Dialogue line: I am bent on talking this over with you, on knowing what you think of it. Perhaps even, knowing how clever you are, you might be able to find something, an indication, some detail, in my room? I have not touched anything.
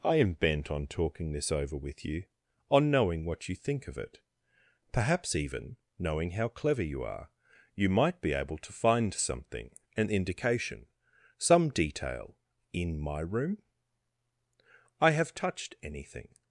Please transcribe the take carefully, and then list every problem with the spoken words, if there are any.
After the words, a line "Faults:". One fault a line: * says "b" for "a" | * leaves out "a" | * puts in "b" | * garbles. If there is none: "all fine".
I am bent on talking this over with you, on knowing what you think of it. Perhaps even, knowing how clever you are, you might be able to find something, an indication, some detail, in my room? I have touched anything.
Faults:
* leaves out "not"